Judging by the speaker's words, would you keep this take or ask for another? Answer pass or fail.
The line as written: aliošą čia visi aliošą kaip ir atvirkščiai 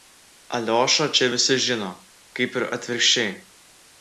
fail